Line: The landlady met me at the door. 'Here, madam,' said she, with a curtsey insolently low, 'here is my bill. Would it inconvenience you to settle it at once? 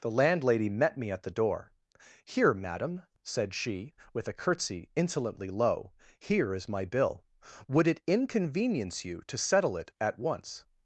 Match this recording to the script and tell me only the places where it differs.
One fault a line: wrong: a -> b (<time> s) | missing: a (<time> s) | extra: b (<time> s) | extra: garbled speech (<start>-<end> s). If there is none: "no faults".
no faults